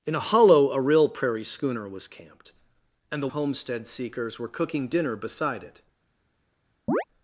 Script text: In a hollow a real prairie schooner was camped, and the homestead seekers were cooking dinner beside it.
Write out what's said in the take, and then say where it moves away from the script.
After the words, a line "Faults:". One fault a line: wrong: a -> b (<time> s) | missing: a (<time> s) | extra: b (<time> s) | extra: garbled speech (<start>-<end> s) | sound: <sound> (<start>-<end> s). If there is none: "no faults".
In a hollow a real prairie schooner was camped, and the homestead seekers were cooking dinner beside it.
Faults:
sound: chirp (6.9-7.0 s)